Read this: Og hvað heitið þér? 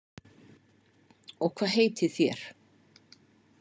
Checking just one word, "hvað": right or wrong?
right